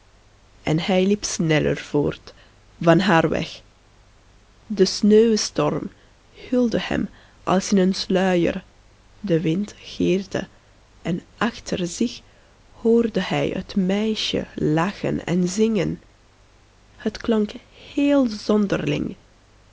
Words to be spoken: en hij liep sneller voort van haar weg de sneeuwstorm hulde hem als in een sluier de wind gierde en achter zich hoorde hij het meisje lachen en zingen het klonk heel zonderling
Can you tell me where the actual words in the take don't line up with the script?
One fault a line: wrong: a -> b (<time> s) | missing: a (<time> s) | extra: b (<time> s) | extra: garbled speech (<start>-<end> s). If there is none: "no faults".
no faults